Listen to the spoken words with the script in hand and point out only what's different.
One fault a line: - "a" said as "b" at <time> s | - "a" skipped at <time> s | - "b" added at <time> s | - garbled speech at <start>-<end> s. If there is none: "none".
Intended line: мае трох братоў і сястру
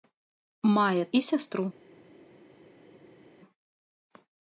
- "трох братоў" skipped at 1.0 s